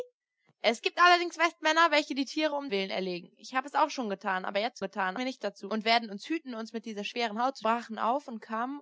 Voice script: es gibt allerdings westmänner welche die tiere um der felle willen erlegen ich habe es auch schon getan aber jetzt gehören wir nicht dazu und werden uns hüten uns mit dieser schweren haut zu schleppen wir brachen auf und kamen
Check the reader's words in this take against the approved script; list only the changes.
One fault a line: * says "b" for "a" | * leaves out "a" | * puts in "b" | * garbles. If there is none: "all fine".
* leaves out "der felle"
* says "getan" for "gehören"
* leaves out "schleppen wir"